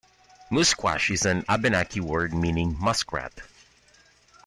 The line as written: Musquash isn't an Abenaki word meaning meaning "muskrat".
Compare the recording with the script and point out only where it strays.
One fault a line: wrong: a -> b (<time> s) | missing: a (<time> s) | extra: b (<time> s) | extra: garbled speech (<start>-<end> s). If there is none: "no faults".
wrong: isn't -> is (1.1 s)
missing: meaning (2.8 s)